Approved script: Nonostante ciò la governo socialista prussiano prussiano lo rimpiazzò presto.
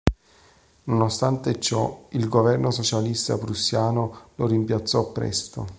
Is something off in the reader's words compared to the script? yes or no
yes